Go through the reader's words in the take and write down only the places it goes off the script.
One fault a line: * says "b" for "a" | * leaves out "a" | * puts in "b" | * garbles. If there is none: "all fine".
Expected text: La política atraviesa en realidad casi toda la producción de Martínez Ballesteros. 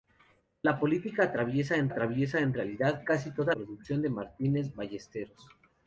* puts in "atraviesa en"
* leaves out "la"